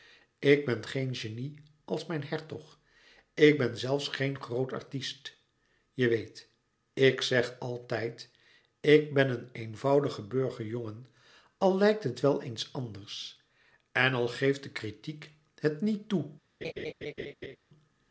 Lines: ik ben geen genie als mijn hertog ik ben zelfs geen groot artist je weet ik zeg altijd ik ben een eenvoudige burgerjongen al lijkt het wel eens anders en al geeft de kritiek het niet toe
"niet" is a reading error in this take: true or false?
false